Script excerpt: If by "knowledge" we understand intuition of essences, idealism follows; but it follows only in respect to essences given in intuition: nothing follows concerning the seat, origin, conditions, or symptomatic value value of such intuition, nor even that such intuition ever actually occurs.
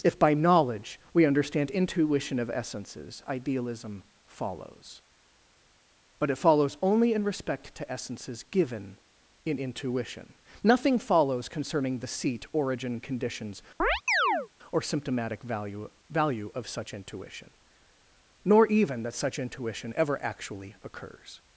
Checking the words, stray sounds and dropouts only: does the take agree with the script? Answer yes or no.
no